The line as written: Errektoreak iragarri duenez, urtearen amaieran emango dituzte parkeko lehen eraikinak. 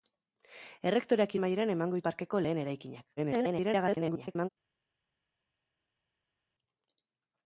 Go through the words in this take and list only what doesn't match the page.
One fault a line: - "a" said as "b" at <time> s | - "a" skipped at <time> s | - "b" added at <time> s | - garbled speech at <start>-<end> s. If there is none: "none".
- "iragarri duenez urtearen" skipped at 1.4 s
- "dituzte" skipped at 2.0 s
- garbled speech at 3.2-4.5 s